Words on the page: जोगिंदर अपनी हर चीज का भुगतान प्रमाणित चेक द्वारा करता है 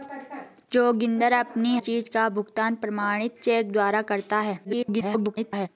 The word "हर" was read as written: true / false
false